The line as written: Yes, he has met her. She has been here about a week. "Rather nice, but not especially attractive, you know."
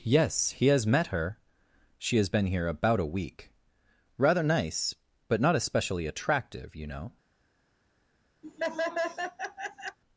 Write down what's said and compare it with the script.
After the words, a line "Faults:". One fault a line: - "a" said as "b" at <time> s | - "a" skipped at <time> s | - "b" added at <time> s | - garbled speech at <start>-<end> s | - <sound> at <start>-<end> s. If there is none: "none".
Yes, he has met her. She has been here about a week. "Rather nice, but not especially attractive, you know."
Faults:
- laugh at 8.4-10.0 s